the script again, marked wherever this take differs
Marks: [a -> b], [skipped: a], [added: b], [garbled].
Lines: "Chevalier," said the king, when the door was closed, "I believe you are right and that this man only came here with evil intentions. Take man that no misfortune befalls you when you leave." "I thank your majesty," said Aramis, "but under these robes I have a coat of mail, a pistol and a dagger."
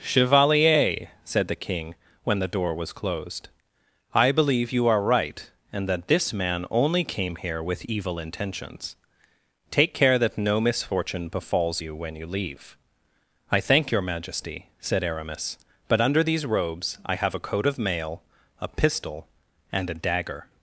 "Chevalier," said the king, when the door was closed, "I believe you are right and that this man only came here with evil intentions. Take [man -> care] that no misfortune befalls you when you leave." "I thank your majesty," said Aramis, "but under these robes I have a coat of mail, a pistol and a dagger."